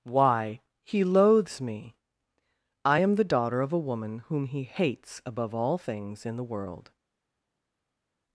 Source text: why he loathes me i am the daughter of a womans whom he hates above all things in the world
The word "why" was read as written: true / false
true